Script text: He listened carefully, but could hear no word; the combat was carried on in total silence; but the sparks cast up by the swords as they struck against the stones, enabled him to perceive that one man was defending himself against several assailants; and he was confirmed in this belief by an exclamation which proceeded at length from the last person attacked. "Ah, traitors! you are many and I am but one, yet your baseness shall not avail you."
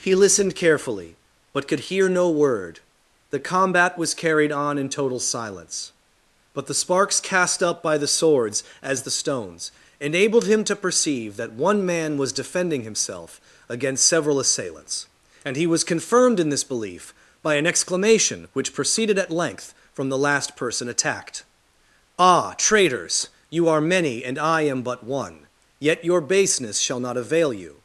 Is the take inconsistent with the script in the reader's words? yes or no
yes